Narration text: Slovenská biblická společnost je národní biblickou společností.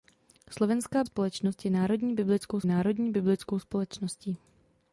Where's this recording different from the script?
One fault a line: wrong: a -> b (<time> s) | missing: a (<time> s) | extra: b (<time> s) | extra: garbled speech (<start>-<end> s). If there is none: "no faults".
missing: biblická (1.0 s)
extra: národní biblickou (2.7 s)